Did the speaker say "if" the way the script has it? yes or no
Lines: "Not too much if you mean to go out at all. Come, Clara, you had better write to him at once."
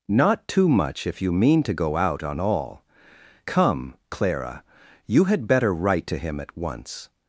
yes